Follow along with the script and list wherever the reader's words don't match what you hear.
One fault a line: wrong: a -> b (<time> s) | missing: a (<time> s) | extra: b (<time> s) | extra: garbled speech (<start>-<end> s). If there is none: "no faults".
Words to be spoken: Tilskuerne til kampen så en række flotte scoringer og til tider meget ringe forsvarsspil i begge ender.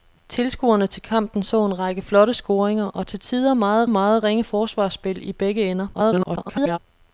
extra: meget (3.9 s)
extra: garbled speech (5.9-6.8 s)